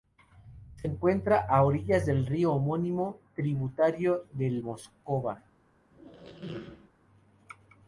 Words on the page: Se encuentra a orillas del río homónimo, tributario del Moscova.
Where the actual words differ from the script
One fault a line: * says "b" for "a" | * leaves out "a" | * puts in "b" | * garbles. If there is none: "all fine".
all fine